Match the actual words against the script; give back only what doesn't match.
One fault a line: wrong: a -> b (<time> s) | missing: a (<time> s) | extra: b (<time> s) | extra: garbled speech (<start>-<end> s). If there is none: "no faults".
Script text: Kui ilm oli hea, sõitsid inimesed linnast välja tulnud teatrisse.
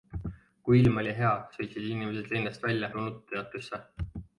no faults